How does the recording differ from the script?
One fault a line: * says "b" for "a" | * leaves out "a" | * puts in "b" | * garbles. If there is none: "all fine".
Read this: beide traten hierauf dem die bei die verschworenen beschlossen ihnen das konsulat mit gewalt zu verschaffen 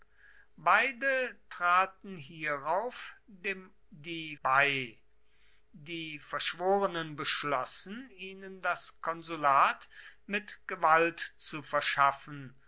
all fine